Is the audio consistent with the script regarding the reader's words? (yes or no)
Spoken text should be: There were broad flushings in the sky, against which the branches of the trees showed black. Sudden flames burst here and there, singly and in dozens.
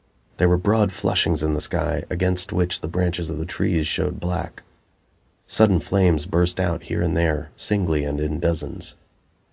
no